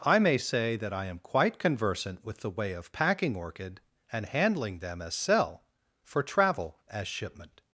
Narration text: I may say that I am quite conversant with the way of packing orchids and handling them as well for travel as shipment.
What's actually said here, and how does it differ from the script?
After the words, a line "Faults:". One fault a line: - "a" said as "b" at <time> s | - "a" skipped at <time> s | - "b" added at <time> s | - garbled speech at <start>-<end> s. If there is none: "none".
I may say that I am quite conversant with the way of packing orchid and handling them as cell for travel as shipment.
Faults:
- "orchids" said as "orchid" at 3.4 s
- "well" said as "cell" at 5.1 s